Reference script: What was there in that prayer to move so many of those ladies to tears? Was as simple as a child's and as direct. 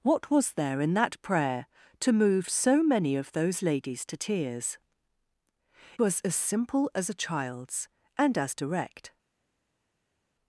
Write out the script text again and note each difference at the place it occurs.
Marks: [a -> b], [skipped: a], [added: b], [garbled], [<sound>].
What was there in that prayer to move so many of those ladies to tears? Was as simple as a child's and as direct.